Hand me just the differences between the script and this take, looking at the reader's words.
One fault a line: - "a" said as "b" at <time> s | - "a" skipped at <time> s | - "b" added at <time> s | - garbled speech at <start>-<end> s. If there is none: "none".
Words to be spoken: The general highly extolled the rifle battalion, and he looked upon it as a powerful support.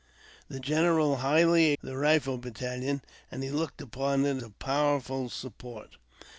- "extolled" skipped at 1.7 s
- "as" skipped at 4.4 s